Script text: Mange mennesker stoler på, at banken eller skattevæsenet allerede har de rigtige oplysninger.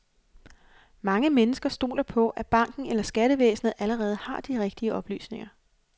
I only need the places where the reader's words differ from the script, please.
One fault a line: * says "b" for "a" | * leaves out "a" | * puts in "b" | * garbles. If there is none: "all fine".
all fine